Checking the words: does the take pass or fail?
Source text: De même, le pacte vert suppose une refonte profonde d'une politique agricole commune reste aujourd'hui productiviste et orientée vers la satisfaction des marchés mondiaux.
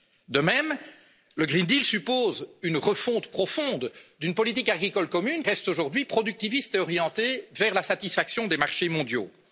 pass